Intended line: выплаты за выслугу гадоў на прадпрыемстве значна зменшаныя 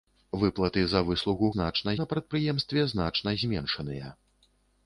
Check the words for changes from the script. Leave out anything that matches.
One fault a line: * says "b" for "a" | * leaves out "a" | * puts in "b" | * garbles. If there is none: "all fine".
* says "значна" for "гадоў"